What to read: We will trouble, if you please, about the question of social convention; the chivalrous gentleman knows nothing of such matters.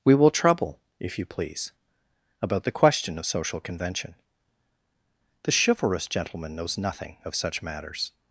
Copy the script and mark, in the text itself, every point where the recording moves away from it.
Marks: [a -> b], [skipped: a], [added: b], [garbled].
We will trouble, if you please, about the question of social convention; the chivalrous gentleman knows nothing of such matters.